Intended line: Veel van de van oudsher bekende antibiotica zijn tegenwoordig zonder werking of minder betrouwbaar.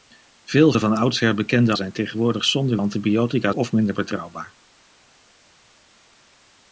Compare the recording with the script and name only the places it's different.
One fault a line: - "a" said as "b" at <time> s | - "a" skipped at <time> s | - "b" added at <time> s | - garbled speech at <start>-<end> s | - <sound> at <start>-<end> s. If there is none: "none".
- "van" skipped at 0.7 s
- "antibiotica" skipped at 1.7 s
- "werking" said as "antibiotica" at 2.7 s